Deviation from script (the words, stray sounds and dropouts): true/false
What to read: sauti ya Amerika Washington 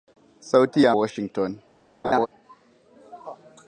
true